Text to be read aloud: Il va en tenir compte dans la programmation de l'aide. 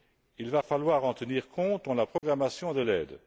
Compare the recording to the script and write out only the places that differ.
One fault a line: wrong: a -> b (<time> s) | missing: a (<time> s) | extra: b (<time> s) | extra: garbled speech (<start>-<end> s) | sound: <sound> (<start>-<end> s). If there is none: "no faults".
extra: falloir (0.6 s)
sound: dropout (2.2-2.2 s)